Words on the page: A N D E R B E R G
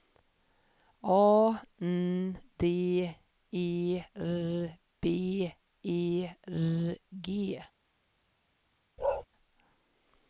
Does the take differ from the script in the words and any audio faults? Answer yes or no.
yes